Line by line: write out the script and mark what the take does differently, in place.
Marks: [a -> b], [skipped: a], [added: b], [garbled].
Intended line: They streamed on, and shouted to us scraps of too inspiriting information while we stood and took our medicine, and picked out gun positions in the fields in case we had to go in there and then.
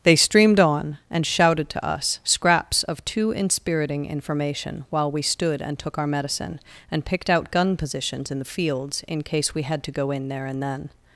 They streamed on, and shouted to us scraps of too inspiriting information while we stood and took our medicine, and picked out gun positions in the fields in case we had to go in there and then.